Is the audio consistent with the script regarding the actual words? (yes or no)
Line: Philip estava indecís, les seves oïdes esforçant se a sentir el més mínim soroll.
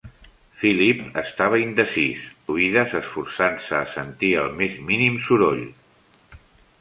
no